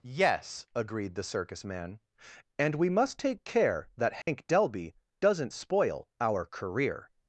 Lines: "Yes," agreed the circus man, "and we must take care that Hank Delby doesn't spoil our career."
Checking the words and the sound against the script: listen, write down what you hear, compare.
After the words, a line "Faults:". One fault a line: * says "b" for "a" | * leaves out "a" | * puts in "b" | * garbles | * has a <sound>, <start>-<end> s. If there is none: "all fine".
"Yes," agreed the circus man, "and we must take care that Hank Delby doesn't spoil our career."
Faults:
* has a dropout, 4.2-4.3 s